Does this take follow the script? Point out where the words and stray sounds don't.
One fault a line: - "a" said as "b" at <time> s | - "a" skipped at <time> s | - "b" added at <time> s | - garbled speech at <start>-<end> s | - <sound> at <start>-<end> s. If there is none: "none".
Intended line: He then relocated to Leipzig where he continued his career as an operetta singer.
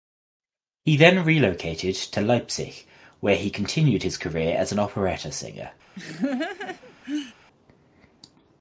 - laugh at 6.0-7.3 s